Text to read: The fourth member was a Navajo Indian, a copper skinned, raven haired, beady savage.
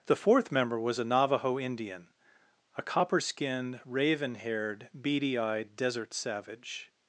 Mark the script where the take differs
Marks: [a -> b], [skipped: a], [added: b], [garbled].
The fourth member was a Navajo Indian, a copper skinned, raven haired, beady [added: eyed desert] savage.